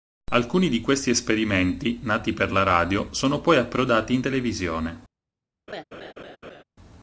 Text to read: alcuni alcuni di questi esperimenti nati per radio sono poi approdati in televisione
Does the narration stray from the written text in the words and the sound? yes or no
yes